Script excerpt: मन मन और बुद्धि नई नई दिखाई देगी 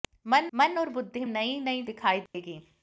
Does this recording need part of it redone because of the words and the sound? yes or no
yes